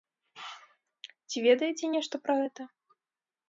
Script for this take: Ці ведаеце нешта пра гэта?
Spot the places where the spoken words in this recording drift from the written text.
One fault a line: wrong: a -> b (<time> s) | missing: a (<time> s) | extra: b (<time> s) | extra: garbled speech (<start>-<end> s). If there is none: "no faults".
no faults